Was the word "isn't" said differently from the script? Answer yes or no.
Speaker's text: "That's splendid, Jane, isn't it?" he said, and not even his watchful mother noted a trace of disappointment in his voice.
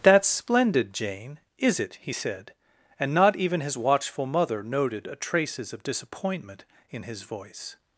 yes